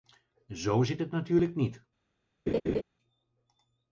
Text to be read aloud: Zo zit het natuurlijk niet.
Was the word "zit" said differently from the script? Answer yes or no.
no